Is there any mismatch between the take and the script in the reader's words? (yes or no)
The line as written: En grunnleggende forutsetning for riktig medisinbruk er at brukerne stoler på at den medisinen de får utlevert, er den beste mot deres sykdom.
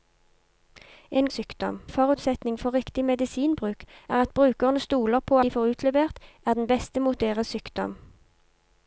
yes